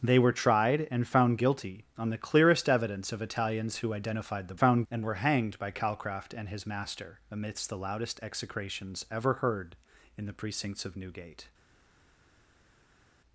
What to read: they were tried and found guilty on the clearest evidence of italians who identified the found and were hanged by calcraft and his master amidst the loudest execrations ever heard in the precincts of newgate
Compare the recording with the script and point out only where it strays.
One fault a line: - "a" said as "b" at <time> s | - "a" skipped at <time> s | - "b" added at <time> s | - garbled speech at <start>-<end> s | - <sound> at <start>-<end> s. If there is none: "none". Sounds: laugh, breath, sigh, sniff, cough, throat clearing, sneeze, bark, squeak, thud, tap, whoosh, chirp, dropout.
none